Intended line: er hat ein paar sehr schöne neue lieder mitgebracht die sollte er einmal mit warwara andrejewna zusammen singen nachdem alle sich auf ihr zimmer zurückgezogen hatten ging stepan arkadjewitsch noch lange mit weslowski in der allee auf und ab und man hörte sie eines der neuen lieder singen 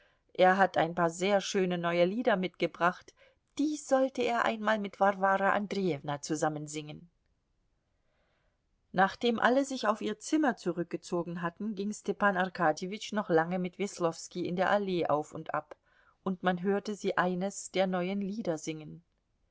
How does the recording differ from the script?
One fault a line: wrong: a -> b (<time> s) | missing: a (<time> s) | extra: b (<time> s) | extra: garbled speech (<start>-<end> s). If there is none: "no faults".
no faults